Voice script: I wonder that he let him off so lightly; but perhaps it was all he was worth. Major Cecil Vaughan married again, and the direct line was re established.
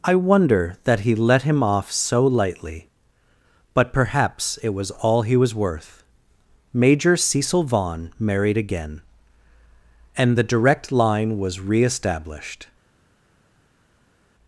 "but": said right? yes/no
yes